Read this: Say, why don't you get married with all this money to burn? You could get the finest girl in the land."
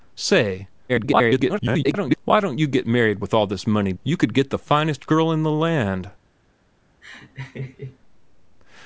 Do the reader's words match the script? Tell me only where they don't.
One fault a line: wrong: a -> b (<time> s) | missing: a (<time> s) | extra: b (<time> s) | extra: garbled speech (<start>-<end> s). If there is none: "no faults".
extra: garbled speech (0.9-2.2 s)
missing: to burn (3.9 s)